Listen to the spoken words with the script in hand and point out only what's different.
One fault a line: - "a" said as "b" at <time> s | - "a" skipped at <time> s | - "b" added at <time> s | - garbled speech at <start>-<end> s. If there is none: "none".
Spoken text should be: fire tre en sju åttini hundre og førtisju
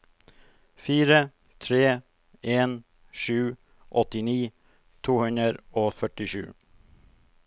- "to" added at 5.1 s